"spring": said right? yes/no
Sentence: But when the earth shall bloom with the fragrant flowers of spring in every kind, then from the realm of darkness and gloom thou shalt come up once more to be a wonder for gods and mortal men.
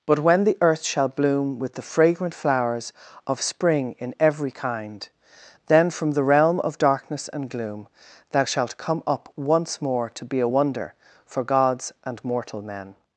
yes